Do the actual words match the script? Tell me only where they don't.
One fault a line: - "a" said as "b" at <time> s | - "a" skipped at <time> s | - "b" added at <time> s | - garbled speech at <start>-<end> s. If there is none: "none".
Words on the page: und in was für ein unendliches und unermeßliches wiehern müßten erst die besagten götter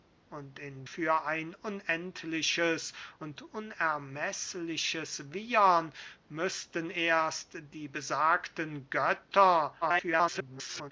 - "was" skipped at 0.9 s
- garbled speech at 9.8-10.9 s